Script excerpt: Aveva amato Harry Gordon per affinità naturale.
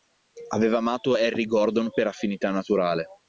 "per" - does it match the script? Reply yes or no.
yes